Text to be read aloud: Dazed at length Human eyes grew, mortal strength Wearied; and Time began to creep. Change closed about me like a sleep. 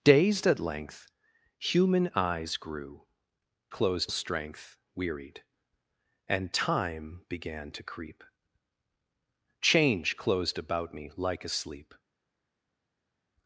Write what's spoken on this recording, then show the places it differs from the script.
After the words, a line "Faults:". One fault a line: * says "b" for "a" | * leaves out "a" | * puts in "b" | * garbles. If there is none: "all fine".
Dazed at length Human eyes grew, closed strength Wearied; and Time began to creep. Change closed about me like a sleep.
Faults:
* says "closed" for "mortal"